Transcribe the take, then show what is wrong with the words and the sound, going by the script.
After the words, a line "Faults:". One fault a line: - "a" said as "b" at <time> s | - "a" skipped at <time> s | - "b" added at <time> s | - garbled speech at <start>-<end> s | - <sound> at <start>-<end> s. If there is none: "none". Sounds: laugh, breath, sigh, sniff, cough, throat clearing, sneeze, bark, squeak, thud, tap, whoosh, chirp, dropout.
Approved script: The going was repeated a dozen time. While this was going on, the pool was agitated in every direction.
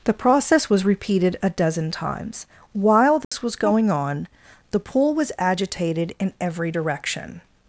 The process was repeated a dozen times. While this was going on, the pool was agitated in every direction.
Faults:
- "going" said as "process" at 0.1 s
- "time" said as "times" at 1.9 s
- dropout at 3.2-3.3 s